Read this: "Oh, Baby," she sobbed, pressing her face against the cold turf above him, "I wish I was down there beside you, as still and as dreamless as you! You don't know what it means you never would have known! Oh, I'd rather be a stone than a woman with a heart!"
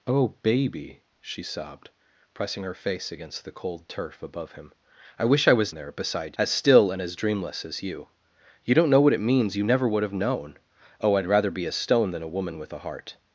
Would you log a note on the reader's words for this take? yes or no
yes